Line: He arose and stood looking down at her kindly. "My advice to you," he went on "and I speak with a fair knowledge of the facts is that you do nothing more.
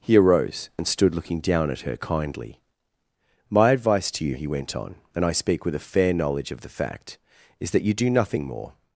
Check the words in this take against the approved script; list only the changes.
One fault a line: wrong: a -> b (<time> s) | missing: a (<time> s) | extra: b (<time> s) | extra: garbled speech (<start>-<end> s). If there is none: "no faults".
wrong: facts -> fact (6.7 s)